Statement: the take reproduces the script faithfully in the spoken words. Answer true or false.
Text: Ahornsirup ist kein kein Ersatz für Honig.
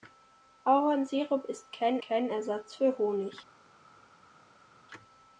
true